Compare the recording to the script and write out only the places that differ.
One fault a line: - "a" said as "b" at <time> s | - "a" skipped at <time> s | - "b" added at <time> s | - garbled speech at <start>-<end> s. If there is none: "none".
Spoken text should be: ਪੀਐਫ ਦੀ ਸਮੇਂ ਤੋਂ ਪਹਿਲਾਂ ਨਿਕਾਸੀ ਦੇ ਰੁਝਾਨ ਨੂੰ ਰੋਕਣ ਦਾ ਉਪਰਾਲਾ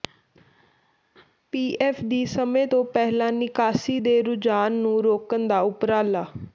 none